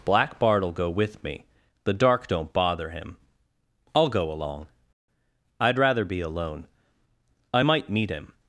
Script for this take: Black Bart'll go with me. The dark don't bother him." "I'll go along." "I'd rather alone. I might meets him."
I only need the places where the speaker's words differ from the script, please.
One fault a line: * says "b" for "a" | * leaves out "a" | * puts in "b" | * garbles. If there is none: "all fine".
* puts in "be"
* says "meet" for "meets"